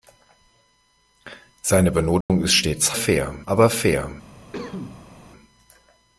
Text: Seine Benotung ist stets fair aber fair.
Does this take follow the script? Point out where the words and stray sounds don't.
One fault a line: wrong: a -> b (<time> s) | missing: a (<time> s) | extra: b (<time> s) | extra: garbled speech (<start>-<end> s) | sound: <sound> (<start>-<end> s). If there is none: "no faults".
sound: dropout (2.2-2.3 s)
sound: cough (4.5-5.1 s)